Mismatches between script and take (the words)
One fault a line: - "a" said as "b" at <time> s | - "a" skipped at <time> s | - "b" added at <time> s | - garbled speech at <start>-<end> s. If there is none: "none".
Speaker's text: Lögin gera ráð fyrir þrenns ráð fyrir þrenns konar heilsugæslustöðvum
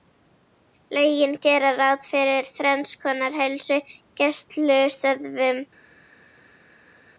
- "ráð fyrir þrenns" skipped at 3.0 s